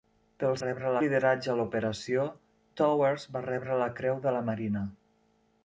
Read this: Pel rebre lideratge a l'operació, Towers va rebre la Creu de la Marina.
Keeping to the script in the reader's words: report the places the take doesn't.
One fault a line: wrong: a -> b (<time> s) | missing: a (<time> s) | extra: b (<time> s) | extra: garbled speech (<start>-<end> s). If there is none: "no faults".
no faults